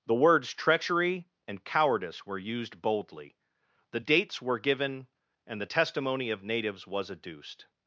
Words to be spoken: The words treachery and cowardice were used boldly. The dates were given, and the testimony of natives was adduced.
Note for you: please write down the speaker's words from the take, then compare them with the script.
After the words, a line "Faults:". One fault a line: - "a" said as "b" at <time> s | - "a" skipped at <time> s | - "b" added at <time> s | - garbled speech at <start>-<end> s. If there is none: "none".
The words treachery and cowardice were used boldly. The dates were given, and the testimony of natives was adduced.
Faults:
none